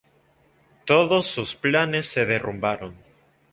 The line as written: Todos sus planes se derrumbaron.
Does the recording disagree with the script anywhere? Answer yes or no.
no